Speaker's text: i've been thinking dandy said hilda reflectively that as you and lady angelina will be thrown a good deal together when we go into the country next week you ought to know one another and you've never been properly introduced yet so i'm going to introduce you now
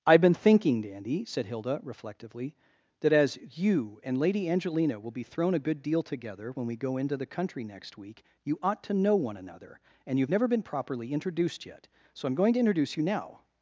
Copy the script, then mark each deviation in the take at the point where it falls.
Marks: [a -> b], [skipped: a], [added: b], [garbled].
i've been thinking dandy said hilda reflectively that as you and lady angelina will be thrown a good deal together when we go into the country next week you ought to know one another and you've never been properly introduced yet so i'm going to introduce you now